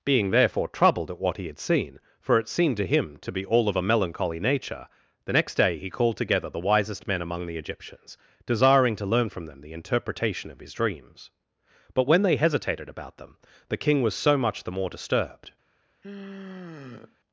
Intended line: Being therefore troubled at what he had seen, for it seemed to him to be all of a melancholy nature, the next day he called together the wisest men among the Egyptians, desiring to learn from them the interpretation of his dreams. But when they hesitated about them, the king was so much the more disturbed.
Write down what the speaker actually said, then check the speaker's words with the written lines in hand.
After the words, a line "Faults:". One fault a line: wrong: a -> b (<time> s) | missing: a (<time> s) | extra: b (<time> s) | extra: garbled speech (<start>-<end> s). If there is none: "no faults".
Being therefore troubled at what he had seen, for it seemed to him to be all of a melancholy nature, the next day he called together the wisest men among the Egyptians, desiring to learn from them the interpretation of his dreams. But when they hesitated about them, the king was so much the more disturbed.
Faults:
no faults